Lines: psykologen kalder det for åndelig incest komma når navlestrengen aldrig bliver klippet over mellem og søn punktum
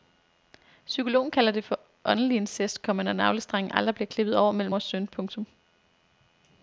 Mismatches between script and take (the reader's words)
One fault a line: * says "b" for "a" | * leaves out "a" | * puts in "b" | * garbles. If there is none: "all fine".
all fine